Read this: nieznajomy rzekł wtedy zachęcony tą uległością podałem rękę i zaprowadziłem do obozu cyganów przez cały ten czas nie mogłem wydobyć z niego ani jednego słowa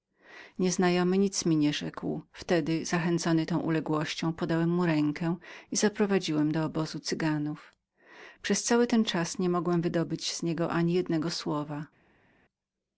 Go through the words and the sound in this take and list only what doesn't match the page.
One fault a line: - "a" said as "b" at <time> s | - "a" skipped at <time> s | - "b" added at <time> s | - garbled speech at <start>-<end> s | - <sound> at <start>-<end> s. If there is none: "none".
- "nic mi nie" added at 1.2 s
- "mu" added at 4.7 s